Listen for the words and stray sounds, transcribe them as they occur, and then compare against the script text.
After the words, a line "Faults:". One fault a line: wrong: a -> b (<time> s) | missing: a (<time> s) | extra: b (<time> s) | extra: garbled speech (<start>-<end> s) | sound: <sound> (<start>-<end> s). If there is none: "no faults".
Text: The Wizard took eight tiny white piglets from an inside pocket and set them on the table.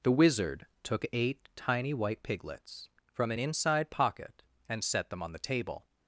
The Wizard took eight tiny white piglets from an inside pocket and set them on the table.
Faults:
no faults